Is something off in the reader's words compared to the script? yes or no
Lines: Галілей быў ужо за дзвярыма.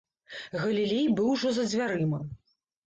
no